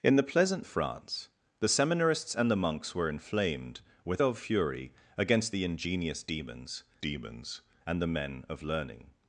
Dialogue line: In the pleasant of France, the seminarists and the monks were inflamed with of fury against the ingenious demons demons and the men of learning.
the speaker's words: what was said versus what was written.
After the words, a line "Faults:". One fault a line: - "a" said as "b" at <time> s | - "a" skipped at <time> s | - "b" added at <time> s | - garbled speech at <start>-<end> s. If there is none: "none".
In the pleasant of France, the seminarists and the monks were inflamed with of fury against the ingenious demons demons and the men of learning.
Faults:
none